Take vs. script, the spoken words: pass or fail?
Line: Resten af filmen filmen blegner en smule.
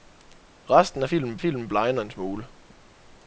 pass